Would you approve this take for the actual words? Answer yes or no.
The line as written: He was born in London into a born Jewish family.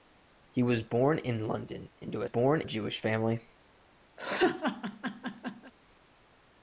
yes